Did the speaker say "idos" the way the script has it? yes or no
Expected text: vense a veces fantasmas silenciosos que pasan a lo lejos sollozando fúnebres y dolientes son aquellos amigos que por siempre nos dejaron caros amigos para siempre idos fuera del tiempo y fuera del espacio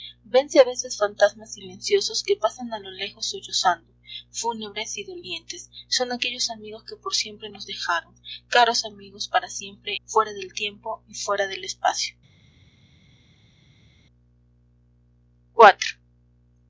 no